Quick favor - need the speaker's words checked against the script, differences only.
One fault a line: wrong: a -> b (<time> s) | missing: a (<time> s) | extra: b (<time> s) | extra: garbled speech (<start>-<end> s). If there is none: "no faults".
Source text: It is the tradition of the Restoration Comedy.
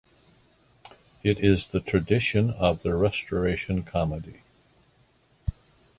no faults